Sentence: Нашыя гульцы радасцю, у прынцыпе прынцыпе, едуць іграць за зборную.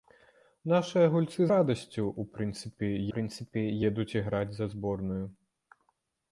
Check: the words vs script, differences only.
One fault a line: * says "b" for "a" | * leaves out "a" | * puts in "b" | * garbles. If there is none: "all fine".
all fine